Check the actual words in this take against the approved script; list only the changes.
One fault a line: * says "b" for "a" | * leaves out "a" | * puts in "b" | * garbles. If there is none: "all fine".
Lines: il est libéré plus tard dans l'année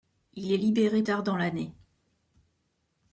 * leaves out "plus"